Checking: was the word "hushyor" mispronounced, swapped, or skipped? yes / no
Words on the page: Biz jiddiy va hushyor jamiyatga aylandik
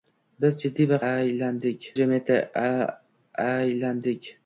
yes